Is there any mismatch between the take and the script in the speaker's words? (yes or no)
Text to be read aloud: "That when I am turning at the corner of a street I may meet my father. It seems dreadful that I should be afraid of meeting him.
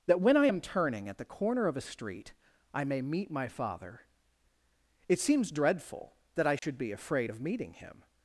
no